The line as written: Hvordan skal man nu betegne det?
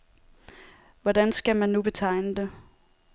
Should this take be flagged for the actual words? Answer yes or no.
no